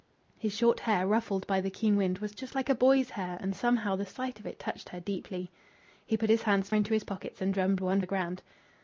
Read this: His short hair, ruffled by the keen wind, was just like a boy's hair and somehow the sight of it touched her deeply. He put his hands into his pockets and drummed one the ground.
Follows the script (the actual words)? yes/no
yes